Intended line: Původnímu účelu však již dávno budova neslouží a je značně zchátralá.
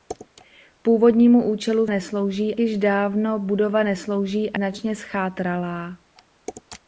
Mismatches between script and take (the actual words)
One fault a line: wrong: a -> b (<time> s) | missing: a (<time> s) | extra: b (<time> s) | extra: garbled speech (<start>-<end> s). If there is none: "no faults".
wrong: však -> neslouží (1.9 s)
missing: je (4.6 s)